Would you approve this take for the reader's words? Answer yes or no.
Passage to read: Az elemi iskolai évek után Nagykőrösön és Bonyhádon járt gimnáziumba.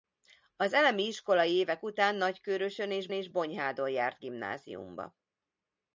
no